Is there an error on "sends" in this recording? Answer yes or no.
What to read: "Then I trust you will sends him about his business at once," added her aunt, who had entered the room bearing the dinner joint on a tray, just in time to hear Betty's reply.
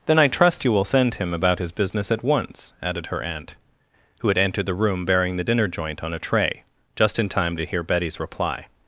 yes